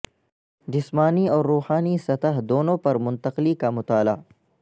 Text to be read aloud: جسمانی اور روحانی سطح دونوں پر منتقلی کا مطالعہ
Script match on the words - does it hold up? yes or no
yes